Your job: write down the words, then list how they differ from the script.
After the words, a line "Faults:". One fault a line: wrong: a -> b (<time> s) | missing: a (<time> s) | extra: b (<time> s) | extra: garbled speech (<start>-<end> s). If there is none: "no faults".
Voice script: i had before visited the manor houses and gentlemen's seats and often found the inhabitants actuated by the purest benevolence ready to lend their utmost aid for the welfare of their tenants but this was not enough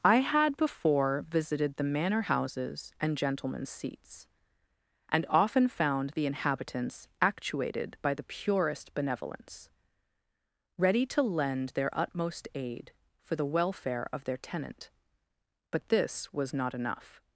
i had before visited the manor houses and gentlemen's seats and often found the inhabitants actuated by the purest benevolence ready to lend their utmost aid for the welfare of their tenant but this was not enough
Faults:
wrong: tenants -> tenant (14.4 s)